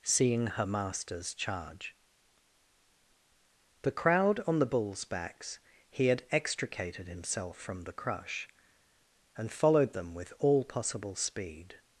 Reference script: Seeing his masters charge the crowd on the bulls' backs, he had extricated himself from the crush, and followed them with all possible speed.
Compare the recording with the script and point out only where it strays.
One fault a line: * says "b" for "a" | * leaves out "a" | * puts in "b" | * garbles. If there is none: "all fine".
* says "her" for "his"